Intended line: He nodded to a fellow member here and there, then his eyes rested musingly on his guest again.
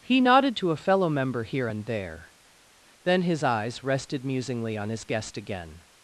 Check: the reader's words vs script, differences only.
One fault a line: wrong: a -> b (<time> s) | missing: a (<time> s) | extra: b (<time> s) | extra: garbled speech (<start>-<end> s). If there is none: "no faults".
no faults